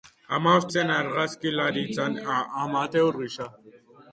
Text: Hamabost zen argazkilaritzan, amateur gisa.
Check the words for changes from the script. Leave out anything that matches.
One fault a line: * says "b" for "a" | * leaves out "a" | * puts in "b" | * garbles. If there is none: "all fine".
all fine